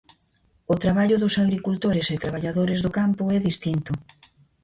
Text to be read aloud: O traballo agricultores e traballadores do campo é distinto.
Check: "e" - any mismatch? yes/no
no